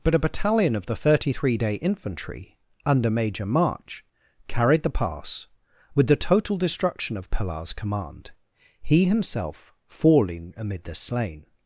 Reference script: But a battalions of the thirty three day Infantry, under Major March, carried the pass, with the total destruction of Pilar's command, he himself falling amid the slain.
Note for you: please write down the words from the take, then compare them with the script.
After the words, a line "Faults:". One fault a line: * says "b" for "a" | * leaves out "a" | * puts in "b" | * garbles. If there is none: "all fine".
But a battalion of the thirty three day Infantry, under Major March, carried the pass, with the total destruction of Pilar's command, he himself falling amid the slain.
Faults:
* says "battalion" for "battalions"